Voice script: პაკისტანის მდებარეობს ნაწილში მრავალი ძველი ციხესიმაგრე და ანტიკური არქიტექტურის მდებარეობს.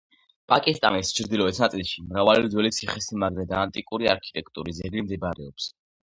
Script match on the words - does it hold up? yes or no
no